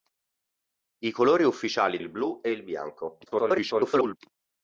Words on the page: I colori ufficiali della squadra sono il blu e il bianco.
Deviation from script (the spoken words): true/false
true